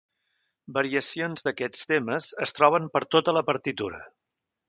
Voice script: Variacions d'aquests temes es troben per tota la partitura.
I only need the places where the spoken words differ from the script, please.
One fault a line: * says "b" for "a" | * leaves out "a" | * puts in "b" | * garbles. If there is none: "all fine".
all fine